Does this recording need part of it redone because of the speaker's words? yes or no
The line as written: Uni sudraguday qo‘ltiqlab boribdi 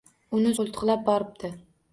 yes